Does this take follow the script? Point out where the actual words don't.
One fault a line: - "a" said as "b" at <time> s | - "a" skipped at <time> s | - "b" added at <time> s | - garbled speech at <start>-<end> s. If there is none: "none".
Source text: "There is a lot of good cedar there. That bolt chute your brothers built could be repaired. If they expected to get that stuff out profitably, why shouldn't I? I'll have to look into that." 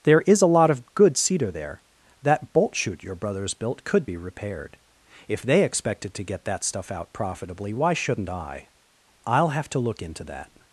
none